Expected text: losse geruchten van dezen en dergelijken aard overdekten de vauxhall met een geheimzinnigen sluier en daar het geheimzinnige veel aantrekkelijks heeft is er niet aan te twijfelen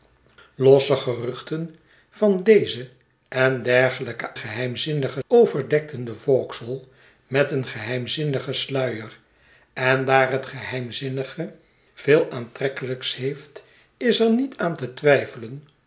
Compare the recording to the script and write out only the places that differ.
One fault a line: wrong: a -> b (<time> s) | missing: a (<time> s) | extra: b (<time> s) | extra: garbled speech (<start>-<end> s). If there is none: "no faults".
wrong: aard -> geheimzinnigen (4.4 s)